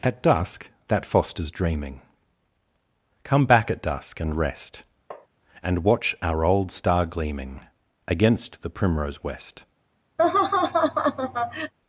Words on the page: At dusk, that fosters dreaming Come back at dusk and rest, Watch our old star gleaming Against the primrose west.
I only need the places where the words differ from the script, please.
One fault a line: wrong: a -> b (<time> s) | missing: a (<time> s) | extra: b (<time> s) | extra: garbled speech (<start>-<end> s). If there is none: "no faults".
extra: And (5.6 s)